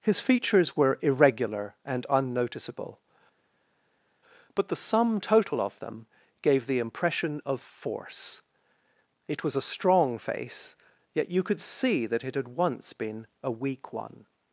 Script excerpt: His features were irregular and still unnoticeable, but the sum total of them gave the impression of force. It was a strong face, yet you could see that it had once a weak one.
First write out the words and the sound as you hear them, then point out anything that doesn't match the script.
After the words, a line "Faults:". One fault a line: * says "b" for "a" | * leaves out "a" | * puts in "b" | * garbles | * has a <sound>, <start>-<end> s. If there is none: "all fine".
His features were irregular and unnoticeable, but the sum total of them gave the impression of force. It was a strong face, yet you could see that it had once been a weak one.
Faults:
* leaves out "still"
* puts in "been"